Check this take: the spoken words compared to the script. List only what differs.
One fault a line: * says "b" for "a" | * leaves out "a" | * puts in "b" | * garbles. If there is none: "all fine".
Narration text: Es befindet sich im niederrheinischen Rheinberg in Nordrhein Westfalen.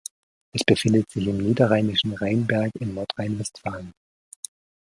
all fine